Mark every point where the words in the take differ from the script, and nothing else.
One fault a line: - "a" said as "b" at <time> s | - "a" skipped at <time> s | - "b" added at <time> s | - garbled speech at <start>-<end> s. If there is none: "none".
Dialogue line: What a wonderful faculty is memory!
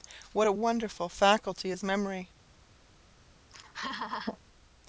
none